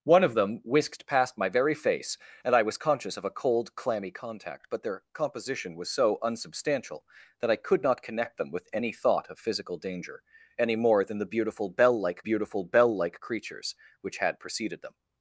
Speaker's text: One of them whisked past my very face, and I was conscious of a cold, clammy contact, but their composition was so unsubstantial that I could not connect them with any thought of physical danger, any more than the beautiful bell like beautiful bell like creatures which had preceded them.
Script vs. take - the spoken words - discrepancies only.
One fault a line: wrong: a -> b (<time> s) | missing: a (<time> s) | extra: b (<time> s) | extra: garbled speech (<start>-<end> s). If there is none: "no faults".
no faults